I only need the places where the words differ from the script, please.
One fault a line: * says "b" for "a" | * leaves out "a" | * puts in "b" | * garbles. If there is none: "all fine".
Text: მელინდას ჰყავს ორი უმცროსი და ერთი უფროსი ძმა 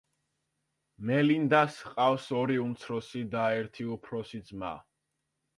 all fine